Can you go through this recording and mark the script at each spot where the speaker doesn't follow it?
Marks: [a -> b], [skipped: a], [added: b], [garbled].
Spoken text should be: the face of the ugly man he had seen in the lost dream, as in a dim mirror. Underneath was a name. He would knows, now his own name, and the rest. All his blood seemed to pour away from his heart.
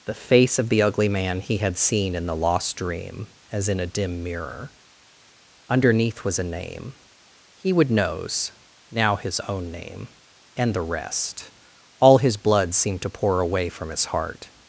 the face of the ugly man he had seen in the lost dream, as in a dim mirror. Underneath was a name. He would knows, now his own name, and the rest. All his blood seemed to pour away from his heart.